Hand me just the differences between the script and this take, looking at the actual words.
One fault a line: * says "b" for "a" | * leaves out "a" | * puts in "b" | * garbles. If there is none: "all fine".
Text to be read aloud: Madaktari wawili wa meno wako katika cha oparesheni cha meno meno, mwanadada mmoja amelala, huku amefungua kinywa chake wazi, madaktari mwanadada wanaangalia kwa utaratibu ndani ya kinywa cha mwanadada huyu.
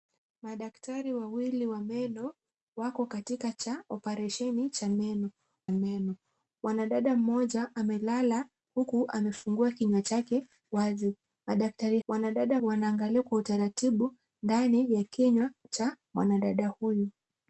all fine